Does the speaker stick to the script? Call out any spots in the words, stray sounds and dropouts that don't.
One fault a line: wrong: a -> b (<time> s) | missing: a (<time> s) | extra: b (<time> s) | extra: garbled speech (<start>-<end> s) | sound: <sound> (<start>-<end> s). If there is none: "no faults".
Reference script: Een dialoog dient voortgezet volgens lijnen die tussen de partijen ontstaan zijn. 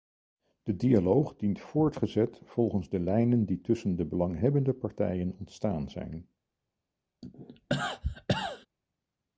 wrong: Een -> De (0.6 s)
extra: de (2.9 s)
extra: belanghebbende (4.0 s)
sound: cough (7.2-8.7 s)